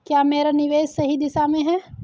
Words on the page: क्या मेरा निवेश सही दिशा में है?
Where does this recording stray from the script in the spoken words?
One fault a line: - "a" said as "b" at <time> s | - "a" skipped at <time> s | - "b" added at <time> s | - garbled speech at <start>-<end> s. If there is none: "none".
none